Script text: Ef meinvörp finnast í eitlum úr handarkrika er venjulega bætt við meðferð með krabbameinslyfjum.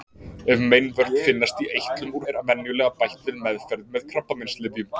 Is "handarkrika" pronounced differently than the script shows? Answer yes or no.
yes